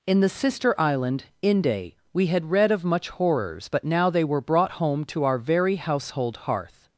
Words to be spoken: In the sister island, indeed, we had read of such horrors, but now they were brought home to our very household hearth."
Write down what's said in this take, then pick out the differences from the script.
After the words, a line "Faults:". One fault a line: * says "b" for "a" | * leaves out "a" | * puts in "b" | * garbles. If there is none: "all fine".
In the sister island, inde, we had read of much horrors, but now they were brought home to our very household hearth."
Faults:
* says "inde" for "indeed"
* says "much" for "such"